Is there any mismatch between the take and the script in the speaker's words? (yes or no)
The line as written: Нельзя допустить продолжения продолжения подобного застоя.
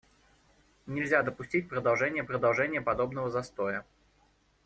no